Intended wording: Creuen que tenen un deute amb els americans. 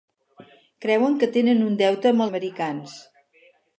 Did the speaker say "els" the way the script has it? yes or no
no